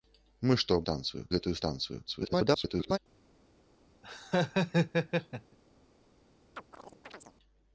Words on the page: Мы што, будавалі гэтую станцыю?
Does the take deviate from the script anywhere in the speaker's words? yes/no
yes